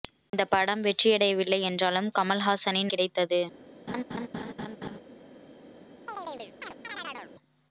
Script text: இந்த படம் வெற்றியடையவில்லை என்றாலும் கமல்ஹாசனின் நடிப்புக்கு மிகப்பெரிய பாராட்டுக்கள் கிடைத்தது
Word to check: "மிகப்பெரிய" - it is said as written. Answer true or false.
false